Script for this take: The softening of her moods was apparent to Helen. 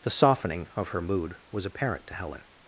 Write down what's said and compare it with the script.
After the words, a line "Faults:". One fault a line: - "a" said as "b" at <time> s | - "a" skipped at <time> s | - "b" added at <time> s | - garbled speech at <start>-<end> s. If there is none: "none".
The softening of her mood was apparent to Helen.
Faults:
- "moods" said as "mood" at 1.0 s